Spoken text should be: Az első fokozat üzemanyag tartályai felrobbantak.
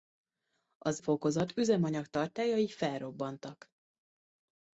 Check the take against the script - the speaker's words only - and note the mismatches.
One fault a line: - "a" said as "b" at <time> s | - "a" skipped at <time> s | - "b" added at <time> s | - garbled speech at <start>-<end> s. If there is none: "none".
- "első" skipped at 1.0 s